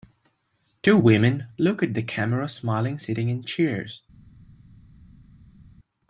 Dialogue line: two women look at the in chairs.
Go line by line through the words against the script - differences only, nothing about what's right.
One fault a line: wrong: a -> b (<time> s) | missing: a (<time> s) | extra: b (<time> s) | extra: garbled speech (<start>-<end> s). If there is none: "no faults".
extra: camera smiling sitting (2.0 s)